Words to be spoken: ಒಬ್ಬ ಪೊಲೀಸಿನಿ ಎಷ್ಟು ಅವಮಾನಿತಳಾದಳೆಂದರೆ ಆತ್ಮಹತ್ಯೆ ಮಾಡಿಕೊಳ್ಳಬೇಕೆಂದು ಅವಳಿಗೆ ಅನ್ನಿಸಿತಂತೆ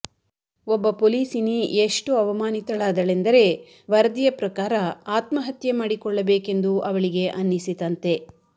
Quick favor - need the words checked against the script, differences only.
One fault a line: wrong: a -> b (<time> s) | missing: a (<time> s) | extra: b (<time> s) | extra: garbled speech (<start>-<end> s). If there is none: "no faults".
extra: ವರದಿಯ ಪ್ರಕಾರ (3.9 s)